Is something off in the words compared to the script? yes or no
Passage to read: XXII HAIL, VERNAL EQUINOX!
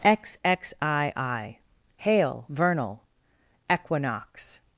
no